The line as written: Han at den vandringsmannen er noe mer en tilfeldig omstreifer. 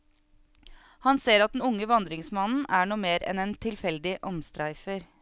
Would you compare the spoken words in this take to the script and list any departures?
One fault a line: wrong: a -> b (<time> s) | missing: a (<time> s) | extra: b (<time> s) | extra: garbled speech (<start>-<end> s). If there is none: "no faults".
extra: ser (1.2 s)
extra: unge (1.6 s)
extra: enn (3.3 s)